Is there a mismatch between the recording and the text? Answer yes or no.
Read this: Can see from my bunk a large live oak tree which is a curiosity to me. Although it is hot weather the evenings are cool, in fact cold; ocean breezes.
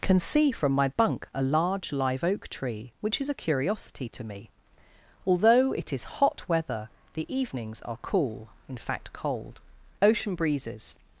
no